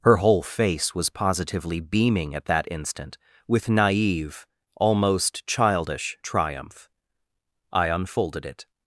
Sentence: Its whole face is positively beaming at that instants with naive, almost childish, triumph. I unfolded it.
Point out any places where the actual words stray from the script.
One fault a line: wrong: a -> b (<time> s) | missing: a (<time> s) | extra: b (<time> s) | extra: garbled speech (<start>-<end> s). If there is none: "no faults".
wrong: Its -> Her (0.0 s)
wrong: is -> was (0.9 s)
wrong: instants -> instant (2.7 s)